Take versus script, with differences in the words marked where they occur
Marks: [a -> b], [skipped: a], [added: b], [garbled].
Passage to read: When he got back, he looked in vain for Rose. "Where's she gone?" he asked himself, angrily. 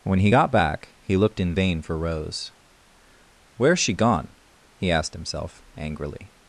When he got back, he looked in vain for Rose. "Where's she gone?" he asked himself, angrily.